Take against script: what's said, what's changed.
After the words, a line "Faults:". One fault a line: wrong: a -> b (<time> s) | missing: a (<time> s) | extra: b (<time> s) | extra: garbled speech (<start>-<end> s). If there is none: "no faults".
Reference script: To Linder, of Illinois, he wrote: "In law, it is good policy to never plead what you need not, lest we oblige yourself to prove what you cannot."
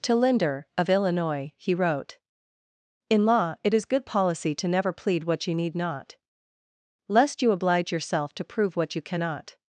To Linder, of Illinois, he wrote: "In law, it is good policy to never plead what you need not, lest you oblige yourself to prove what you cannot."
Faults:
wrong: we -> you (7.4 s)